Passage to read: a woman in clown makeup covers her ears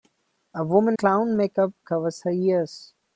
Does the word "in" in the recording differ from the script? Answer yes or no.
yes